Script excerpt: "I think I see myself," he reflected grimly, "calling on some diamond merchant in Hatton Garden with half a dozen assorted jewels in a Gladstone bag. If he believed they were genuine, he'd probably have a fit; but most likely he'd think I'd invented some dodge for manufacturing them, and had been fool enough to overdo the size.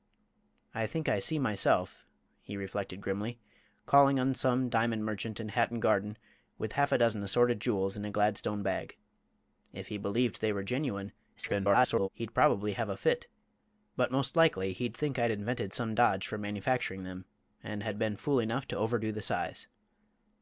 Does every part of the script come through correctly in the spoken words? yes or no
no